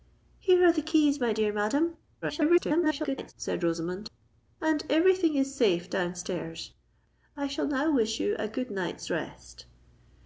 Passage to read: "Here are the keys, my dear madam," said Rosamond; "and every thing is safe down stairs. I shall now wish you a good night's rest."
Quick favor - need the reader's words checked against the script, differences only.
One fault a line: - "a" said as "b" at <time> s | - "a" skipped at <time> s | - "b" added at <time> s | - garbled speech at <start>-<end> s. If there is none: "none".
- garbled speech at 2.2-3.3 s